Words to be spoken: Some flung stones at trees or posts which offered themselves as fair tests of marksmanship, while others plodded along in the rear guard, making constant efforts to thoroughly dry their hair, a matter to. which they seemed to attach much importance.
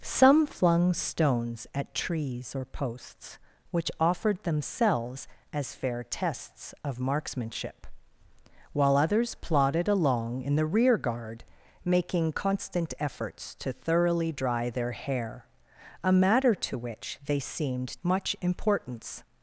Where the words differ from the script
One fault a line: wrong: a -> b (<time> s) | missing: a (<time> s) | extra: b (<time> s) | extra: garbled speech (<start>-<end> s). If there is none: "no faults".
missing: to attach (18.0 s)